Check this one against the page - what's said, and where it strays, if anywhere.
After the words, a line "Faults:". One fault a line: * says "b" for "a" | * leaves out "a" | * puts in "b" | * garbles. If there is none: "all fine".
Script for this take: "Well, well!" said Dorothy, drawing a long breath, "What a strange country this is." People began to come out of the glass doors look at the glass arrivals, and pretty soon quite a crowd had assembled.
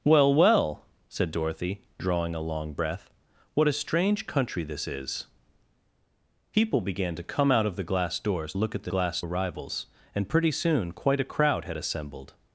"Well, well!" said Dorothy, drawing a long breath, "What a strange country this is." People began to come out of the glass doors look at the glass arrivals, and pretty soon quite a crowd had assembled.
Faults:
all fine